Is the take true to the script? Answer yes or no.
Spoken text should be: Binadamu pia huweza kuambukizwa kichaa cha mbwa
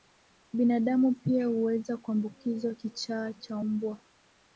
yes